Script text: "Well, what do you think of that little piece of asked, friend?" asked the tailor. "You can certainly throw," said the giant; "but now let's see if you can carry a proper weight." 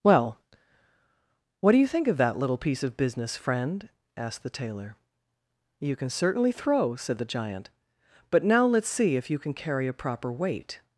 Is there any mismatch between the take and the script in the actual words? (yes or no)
yes